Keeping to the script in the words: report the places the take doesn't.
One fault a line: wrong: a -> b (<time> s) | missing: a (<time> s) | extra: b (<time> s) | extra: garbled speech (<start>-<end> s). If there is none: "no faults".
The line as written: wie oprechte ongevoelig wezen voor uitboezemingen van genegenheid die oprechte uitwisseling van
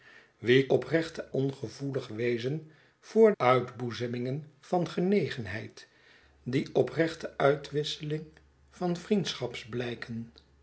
no faults